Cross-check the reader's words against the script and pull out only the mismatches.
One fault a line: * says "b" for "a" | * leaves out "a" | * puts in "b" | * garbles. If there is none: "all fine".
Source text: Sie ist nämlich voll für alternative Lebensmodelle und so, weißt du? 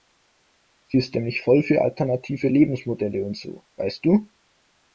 all fine